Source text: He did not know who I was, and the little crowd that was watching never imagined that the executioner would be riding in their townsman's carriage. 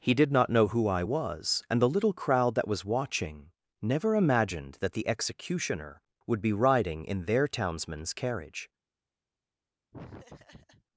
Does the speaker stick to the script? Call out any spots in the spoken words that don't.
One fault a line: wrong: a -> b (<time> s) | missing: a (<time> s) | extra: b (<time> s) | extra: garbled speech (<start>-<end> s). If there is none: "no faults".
no faults